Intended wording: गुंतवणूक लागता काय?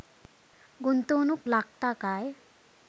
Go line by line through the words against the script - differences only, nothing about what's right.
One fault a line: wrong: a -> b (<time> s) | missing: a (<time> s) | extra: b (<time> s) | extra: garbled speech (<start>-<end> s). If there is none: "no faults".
no faults